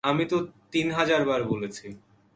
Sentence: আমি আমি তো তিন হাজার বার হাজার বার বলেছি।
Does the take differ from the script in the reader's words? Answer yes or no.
yes